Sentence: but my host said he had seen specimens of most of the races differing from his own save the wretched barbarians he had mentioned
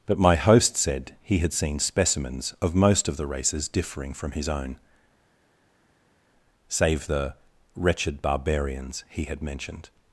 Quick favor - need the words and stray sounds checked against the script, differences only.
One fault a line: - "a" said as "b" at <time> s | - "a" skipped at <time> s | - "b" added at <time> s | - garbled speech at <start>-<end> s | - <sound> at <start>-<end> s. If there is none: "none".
none